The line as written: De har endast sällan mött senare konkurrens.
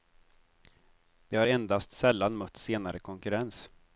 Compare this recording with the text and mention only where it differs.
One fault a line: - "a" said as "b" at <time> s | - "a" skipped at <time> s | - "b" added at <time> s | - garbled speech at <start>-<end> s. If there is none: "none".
none